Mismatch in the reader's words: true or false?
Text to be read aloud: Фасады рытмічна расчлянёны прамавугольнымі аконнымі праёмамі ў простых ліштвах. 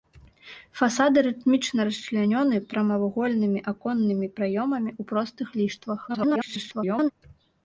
true